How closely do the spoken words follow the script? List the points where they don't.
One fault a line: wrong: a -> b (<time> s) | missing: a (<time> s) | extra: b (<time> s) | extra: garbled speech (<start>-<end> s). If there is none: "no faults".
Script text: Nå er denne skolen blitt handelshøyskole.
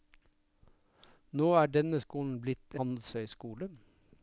no faults